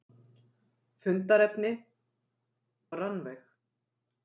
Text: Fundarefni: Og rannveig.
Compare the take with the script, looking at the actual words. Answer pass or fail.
pass